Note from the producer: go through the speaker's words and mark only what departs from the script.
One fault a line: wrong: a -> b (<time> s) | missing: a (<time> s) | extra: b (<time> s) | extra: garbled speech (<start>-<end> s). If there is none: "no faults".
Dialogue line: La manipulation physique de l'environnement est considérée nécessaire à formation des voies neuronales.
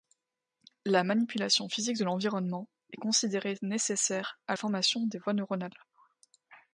no faults